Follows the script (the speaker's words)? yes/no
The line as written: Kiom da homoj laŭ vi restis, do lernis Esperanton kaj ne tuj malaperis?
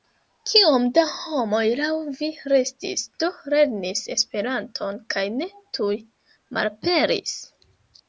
yes